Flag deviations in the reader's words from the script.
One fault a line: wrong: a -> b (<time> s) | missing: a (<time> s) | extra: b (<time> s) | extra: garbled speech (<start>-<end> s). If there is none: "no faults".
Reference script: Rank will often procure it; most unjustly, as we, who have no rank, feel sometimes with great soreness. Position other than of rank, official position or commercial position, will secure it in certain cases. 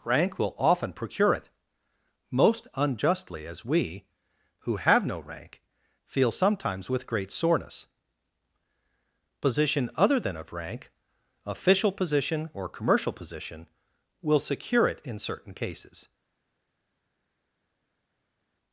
no faults